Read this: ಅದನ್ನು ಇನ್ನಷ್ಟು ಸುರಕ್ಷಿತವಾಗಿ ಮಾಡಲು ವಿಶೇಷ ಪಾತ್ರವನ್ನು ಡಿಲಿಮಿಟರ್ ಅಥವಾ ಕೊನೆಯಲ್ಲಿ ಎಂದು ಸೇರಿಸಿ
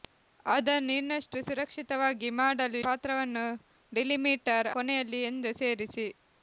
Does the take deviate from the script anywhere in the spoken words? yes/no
yes